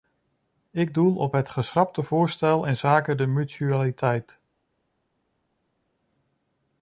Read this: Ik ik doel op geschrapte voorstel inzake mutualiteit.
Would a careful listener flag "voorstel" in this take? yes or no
no